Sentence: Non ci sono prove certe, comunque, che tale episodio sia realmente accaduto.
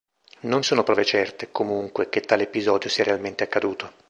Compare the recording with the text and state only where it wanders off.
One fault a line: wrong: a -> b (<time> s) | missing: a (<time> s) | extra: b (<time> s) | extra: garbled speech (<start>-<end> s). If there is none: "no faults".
missing: ci (0.7 s)